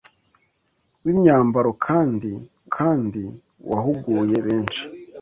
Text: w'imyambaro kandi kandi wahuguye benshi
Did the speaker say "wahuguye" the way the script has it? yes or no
yes